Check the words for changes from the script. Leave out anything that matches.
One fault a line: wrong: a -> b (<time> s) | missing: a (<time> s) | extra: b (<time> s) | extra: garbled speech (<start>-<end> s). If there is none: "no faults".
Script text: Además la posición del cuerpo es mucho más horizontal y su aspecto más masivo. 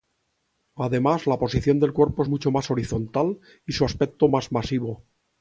no faults